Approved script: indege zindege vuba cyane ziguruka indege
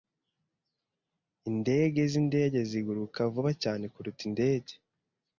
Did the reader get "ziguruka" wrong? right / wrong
wrong